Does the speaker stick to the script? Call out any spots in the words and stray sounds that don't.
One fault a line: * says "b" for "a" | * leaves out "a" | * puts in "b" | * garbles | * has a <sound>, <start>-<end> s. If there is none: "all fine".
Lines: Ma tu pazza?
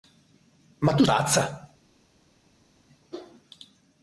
all fine